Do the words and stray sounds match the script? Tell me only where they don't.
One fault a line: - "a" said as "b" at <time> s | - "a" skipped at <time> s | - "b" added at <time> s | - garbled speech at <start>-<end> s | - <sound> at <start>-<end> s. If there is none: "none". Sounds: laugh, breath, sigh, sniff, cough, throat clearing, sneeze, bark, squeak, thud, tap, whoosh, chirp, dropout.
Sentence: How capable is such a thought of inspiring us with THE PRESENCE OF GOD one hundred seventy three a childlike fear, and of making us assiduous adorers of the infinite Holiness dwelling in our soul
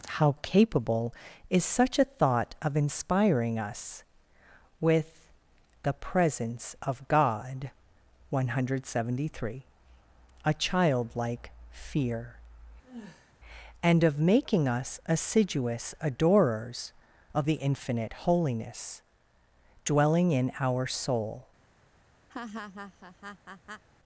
- sigh at 12.8-13.3 s
- laugh at 22.3-23.8 s